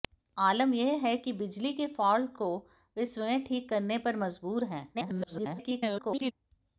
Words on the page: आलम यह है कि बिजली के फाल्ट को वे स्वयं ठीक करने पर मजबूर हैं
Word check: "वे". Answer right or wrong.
right